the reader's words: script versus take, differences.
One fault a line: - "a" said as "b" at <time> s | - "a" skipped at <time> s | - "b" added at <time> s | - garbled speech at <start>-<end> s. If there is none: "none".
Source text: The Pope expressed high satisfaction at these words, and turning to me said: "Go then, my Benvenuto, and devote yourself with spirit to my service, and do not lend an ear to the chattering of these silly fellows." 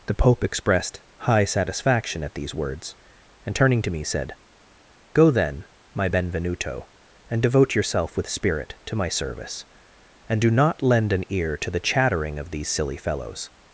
none